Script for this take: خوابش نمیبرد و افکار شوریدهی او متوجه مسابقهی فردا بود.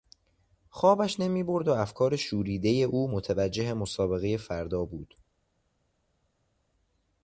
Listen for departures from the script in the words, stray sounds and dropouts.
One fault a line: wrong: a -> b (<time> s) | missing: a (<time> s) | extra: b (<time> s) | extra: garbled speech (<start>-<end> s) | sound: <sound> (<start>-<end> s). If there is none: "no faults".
no faults